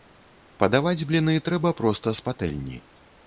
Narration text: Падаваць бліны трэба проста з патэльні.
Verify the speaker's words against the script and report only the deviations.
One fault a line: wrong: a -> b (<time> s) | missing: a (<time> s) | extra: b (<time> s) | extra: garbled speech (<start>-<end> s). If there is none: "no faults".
no faults